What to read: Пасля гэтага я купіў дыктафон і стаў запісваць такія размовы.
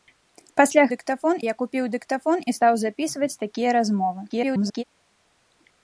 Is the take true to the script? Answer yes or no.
no